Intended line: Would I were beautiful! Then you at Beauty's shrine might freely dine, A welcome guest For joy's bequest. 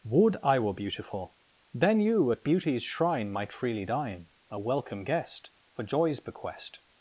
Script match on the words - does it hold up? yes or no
yes